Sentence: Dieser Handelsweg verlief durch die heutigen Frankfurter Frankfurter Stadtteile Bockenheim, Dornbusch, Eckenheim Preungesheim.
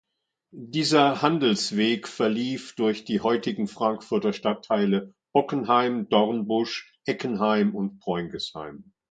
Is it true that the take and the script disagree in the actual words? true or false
true